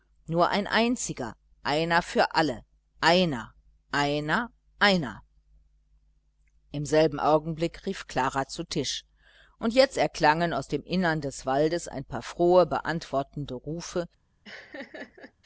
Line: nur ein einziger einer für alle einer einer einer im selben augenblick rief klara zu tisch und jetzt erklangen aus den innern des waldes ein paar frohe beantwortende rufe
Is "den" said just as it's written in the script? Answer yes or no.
no